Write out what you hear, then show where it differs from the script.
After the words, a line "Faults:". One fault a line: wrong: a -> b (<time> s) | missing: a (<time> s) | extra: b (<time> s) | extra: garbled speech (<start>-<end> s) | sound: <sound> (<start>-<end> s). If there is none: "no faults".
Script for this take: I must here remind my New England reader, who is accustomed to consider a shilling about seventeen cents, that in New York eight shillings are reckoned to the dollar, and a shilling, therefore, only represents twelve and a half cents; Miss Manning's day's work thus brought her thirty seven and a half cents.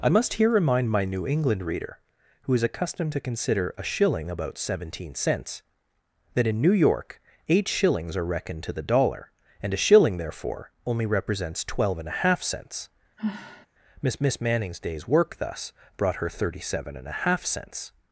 I must here remind my New England reader, who is accustomed to consider a shilling about seventeen cents, that in New York eight shillings are reckoned to the dollar, and a shilling, therefore, only represents twelve and a half cents; Miss Miss Manning's day's work thus brought her thirty seven and a half cents.
Faults:
sound: sigh (13.2-13.7 s)
extra: Miss (14.2 s)